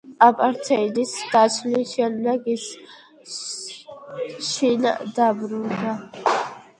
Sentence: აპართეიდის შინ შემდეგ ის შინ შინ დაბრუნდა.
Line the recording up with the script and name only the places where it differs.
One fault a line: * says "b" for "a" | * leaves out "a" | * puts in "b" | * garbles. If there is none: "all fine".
* says "დაშლის" for "შინ"
* leaves out "შინ"